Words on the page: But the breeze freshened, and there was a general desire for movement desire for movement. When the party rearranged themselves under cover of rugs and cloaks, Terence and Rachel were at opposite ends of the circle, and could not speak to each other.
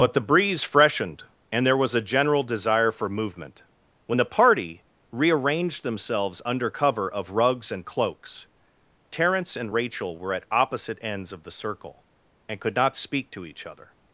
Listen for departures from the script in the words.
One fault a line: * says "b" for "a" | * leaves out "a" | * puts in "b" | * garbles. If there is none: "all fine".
* leaves out "desire for movement"